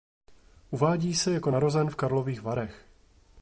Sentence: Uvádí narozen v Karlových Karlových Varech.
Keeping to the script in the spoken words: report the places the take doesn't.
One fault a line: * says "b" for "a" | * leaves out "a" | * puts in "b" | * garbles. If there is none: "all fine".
* puts in "se jako"
* leaves out "Karlových"